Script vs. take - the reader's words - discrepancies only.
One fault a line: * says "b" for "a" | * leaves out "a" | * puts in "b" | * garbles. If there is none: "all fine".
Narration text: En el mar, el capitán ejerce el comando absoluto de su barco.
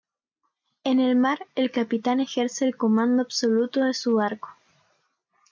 all fine